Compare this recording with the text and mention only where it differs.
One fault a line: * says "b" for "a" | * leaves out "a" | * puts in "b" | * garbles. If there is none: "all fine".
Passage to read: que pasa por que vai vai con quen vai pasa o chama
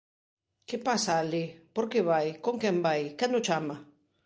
* puts in "alí"
* leaves out "vai"
* says "quen" for "pasa"